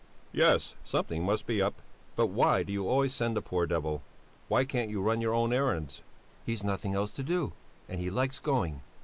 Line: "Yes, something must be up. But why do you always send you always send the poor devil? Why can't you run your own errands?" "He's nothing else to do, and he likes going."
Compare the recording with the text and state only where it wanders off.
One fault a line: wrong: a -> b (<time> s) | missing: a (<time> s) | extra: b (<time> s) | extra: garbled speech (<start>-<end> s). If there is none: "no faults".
missing: you always send (3.4 s)